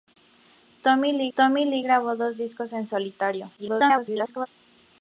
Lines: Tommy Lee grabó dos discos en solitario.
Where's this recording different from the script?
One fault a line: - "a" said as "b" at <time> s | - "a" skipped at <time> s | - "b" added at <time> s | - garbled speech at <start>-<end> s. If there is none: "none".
- "tommy Lee" added at 1.3 s
- garbled speech at 3.6-4.5 s